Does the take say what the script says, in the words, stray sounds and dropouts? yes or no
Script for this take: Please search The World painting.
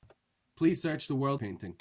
yes